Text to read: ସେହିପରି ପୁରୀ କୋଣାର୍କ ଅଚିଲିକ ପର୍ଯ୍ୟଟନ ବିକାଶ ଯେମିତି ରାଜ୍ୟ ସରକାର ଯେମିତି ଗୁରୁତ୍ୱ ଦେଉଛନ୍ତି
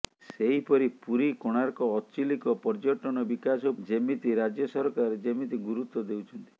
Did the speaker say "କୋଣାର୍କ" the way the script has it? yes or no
yes